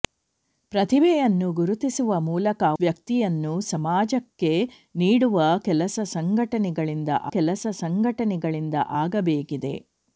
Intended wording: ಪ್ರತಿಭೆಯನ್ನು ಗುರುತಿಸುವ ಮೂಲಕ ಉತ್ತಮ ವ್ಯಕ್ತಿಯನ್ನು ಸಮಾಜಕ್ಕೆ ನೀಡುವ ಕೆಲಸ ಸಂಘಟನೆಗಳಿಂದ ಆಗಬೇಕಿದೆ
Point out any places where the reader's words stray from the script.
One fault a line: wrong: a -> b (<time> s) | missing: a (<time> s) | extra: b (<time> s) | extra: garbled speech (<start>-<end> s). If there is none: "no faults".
missing: ಉತ್ತಮ (2.6 s)
extra: ಕೆಲಸ ಸಂಘಟನೆಗಳಿಂದ (7.3 s)